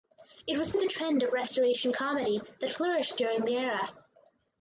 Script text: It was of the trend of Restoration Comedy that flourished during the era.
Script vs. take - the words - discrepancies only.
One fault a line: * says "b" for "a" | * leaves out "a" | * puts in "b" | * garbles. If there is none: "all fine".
all fine